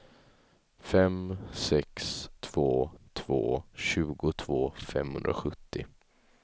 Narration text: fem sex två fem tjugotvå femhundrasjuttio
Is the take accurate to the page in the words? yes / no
no